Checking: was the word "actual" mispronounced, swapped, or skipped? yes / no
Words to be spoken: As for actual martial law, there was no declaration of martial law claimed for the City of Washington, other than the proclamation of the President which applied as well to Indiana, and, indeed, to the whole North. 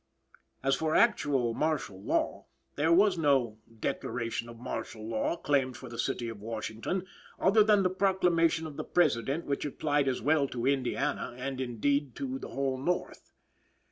no